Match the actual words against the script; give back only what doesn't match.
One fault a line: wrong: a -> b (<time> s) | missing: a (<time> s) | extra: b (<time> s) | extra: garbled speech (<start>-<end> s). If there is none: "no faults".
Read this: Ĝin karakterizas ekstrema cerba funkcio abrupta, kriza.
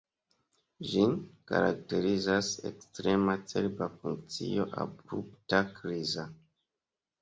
no faults